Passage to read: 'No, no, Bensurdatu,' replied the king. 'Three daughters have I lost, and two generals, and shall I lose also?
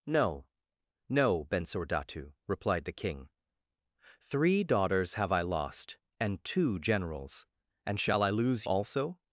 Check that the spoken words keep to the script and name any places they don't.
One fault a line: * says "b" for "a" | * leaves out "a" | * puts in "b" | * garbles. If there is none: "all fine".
all fine